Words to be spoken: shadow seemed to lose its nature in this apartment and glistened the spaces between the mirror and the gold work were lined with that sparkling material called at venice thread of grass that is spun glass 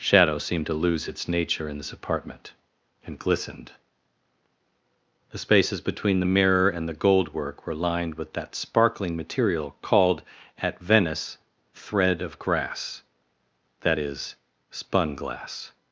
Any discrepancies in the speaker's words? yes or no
no